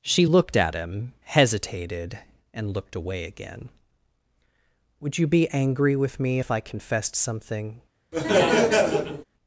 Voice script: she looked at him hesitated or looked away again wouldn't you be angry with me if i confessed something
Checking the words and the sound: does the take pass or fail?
fail